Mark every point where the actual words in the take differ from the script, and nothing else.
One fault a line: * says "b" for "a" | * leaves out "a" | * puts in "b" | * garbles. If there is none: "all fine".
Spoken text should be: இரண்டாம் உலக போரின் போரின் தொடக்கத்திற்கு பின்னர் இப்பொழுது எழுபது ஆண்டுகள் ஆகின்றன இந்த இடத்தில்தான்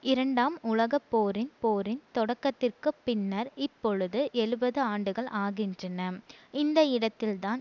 all fine